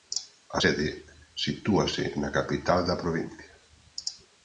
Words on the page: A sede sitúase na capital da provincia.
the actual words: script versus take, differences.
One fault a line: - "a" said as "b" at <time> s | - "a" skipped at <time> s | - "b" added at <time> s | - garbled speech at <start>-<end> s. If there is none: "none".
none